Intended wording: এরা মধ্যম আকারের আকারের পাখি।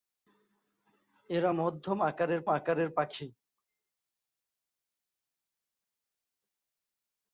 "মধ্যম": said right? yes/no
yes